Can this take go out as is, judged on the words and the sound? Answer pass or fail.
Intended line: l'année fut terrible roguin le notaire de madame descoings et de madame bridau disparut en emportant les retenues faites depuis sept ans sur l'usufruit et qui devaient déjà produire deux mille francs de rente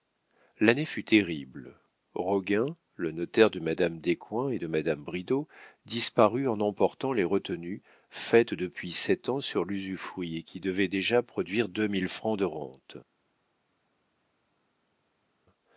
pass